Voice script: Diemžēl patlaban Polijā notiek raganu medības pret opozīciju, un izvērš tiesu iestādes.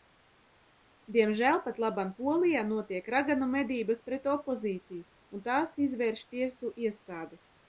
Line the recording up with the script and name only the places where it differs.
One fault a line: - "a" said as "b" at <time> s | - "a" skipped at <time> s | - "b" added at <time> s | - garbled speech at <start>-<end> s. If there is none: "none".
- "tās" added at 5.5 s